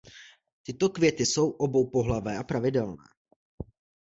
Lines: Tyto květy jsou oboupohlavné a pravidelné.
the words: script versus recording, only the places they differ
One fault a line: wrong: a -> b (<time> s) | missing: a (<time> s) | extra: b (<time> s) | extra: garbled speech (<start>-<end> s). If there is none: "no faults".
no faults